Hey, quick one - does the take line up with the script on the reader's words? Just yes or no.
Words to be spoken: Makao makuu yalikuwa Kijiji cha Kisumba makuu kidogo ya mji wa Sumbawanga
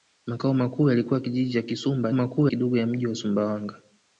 yes